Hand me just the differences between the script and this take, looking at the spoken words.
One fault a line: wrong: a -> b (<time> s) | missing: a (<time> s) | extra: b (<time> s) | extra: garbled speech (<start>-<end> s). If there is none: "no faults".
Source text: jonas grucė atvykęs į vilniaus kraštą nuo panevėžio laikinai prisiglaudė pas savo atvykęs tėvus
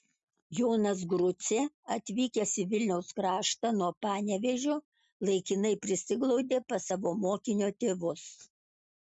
wrong: atvykęs -> mokinio (7.3 s)